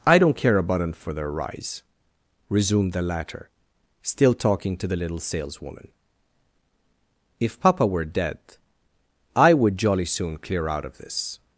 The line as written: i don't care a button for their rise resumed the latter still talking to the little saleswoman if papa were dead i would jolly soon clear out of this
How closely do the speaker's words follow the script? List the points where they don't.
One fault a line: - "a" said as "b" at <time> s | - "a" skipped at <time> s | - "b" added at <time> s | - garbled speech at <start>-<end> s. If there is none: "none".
none